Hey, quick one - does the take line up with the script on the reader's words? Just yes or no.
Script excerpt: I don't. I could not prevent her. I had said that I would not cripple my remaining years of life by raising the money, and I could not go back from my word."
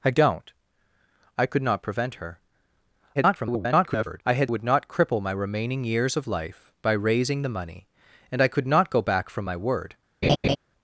no